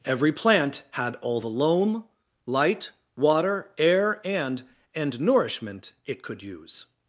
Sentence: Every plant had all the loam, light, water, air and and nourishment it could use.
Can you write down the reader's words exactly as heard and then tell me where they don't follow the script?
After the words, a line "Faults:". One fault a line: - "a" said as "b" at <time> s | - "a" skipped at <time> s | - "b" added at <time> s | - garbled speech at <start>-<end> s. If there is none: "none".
Every plant had all the loam, light, water, air and and nourishment it could use.
Faults:
none